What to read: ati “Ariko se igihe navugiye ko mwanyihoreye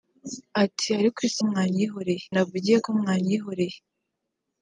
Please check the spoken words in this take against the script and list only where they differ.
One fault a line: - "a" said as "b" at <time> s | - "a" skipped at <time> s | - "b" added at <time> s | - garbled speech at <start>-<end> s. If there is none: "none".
- "igihe" said as "mwanyihoreye" at 1.5 s